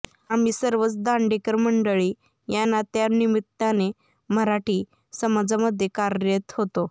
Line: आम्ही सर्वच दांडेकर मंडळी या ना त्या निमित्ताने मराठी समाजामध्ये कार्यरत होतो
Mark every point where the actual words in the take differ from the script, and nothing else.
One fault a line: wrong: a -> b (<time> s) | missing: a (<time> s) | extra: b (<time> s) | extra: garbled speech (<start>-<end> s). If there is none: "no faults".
no faults